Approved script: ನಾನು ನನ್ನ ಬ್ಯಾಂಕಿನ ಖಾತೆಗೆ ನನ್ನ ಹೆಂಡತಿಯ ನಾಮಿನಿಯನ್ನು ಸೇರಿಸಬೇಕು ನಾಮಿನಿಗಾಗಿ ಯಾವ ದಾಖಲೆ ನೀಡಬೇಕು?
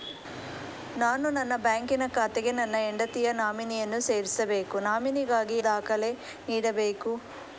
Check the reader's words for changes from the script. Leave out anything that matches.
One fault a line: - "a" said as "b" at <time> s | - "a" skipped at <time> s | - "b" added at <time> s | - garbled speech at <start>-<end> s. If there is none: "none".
- "ಯಾವ" skipped at 5.6 s